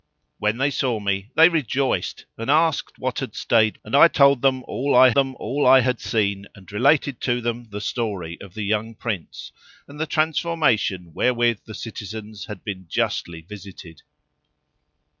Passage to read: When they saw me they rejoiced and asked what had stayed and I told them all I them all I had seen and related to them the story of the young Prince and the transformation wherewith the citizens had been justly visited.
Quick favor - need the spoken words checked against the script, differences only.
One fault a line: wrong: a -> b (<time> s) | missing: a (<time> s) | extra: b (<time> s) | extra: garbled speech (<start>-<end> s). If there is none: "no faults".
no faults